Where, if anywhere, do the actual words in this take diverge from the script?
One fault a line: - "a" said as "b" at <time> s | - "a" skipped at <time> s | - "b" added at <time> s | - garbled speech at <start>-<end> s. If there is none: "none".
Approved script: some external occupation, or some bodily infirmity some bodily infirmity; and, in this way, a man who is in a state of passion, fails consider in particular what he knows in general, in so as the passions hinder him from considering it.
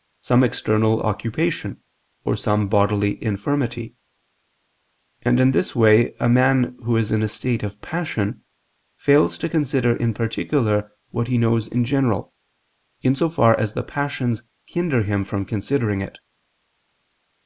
- "some bodily infirmity" skipped at 3.9 s
- "to" added at 9.4 s
- "far" added at 13.3 s